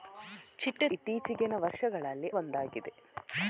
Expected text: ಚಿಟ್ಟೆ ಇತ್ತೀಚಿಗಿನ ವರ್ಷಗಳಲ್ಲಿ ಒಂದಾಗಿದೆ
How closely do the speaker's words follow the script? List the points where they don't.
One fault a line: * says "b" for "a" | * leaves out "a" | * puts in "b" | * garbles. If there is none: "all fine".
all fine